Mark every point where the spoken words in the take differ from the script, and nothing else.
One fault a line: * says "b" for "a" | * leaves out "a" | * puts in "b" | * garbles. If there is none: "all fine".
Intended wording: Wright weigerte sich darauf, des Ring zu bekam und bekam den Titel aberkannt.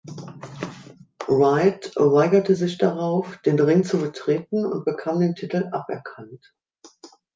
* says "den" for "des"
* says "betreten" for "bekam"